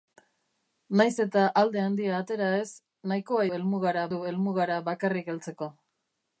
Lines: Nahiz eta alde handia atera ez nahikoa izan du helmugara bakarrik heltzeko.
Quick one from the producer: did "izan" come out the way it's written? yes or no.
no